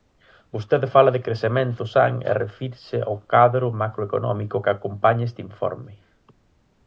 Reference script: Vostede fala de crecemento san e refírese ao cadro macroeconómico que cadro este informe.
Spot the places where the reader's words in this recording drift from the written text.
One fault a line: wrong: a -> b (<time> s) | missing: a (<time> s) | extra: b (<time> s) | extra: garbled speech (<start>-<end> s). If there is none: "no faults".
wrong: cadro -> acompaña (4.7 s)